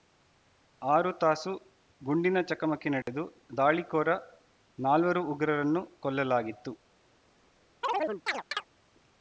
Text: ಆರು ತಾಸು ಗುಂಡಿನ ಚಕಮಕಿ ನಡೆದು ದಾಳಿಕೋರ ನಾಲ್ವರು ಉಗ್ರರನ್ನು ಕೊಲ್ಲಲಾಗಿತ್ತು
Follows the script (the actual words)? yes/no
yes